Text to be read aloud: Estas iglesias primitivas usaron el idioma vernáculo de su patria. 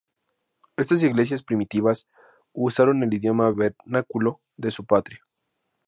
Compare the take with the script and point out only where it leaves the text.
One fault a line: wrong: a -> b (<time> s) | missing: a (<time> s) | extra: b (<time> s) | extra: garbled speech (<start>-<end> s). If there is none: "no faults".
no faults